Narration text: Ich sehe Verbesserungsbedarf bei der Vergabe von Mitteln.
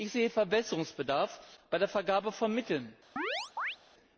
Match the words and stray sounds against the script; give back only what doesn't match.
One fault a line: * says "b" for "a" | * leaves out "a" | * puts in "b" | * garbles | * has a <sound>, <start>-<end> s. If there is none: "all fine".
* has a chirp, 3.2-3.8 s